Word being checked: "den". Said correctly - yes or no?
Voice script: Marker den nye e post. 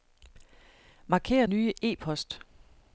no